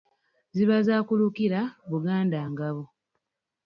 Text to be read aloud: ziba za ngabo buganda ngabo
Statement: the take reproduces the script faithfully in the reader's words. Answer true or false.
false